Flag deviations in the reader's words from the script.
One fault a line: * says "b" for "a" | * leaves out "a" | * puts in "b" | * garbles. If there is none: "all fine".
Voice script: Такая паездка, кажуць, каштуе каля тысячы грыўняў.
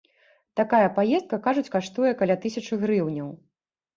all fine